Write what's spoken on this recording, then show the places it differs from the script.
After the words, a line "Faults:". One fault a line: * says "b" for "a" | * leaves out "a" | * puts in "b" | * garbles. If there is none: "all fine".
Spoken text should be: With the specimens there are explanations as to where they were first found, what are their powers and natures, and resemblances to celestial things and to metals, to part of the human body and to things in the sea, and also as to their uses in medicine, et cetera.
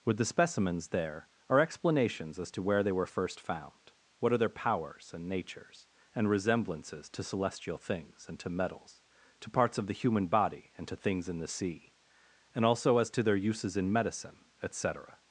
With the specimens there are explanations as to where they were first found, what are their powers and natures, and resemblances to celestial things and to metals, to parts of the human body and to things in the sea, and also as to their uses in medicine, et cetera.
Faults:
* says "parts" for "part"